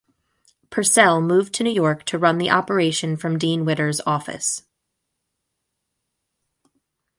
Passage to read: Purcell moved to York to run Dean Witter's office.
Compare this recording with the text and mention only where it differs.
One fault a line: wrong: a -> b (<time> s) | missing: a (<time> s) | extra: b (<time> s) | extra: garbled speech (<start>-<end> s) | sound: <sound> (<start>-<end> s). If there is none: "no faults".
extra: New (1.6 s)
extra: the operation from (2.4 s)